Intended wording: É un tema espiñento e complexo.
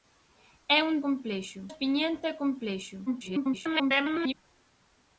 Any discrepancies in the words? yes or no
yes